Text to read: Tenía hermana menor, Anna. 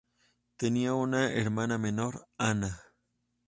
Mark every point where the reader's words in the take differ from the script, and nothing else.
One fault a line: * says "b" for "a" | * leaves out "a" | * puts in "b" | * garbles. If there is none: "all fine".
* puts in "una"